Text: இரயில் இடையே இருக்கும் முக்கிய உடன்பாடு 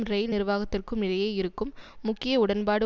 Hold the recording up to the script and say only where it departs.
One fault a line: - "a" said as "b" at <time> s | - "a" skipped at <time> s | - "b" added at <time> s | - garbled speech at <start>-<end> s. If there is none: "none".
- "நிர்வாகத்திற்கும்" added at 0.3 s